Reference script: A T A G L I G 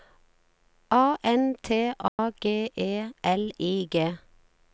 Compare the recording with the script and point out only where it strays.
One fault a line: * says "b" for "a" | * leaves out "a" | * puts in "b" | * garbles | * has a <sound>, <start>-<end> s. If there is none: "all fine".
* puts in "N"
* has a dropout, 2.1-2.2 s
* puts in "E"